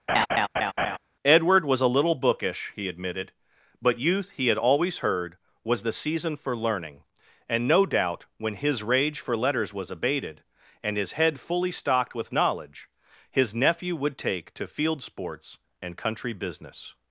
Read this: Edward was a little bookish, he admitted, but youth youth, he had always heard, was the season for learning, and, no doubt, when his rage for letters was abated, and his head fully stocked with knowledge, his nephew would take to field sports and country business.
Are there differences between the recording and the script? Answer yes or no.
yes